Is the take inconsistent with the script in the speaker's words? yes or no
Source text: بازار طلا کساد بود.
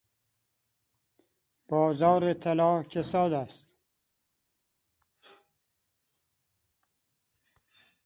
yes